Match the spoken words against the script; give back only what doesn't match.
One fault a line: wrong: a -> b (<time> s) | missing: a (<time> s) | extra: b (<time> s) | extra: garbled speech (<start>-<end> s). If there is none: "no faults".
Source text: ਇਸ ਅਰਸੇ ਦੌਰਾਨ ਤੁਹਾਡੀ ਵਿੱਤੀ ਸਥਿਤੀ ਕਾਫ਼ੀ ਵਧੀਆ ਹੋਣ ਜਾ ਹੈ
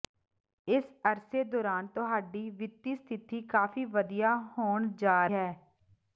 no faults